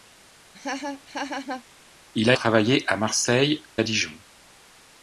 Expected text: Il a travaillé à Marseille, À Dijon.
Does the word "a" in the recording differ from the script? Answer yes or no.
no